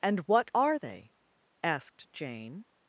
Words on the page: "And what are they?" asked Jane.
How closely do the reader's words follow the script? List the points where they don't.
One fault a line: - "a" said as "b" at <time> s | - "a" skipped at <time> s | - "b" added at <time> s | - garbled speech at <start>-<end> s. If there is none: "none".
none